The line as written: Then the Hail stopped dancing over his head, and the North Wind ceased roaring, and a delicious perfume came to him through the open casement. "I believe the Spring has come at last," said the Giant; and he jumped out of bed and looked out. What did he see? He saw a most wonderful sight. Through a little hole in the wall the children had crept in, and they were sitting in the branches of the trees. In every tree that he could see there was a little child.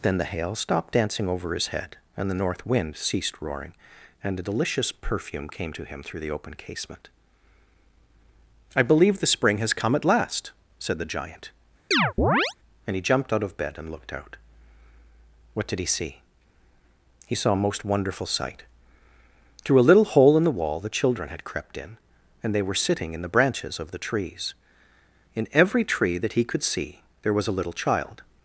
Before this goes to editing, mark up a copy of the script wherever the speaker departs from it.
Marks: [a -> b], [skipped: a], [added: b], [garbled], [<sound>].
Then the Hail stopped dancing over his head, and the North Wind ceased roaring, and a delicious perfume came to him through the open casement. "I believe the Spring has come at last," said the Giant; [chirp] and he jumped out of bed and looked out. What did he see? He saw a most wonderful sight. Through a little hole in the wall the children had crept in, and they were sitting in the branches of the trees. In every tree that he could see there was a little child.